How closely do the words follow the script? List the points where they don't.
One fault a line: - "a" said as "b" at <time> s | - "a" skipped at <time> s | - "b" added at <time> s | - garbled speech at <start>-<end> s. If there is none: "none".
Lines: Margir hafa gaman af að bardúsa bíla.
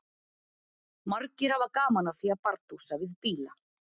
- "því" added at 2.2 s
- "við" added at 3.0 s